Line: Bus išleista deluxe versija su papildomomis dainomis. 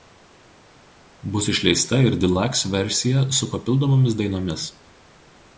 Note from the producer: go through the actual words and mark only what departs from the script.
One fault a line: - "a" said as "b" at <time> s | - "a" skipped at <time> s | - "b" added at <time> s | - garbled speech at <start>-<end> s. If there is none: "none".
- "ir" added at 2.1 s